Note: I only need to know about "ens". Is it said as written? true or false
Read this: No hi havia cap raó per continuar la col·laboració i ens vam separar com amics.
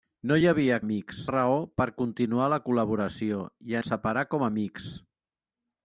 false